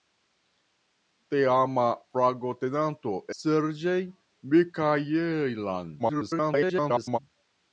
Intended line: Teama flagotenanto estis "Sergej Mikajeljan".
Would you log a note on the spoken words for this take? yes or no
yes